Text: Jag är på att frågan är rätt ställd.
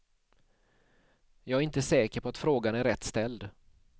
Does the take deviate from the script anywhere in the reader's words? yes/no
yes